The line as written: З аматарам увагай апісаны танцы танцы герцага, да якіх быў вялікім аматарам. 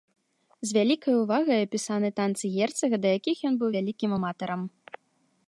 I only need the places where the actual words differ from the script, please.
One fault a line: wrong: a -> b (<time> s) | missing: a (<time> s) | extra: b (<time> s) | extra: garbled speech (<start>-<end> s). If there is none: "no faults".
wrong: аматарам -> вялікай (0.8 s)
missing: танцы (2.5 s)
extra: ён (3.5 s)